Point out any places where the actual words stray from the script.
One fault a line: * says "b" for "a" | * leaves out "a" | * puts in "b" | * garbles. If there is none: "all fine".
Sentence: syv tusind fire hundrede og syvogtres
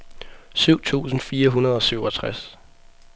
all fine